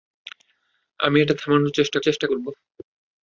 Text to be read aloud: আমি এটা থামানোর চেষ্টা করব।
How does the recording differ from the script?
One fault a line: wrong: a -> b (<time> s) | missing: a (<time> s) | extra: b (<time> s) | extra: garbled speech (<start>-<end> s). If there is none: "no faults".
extra: চেষ্টা (2.0 s)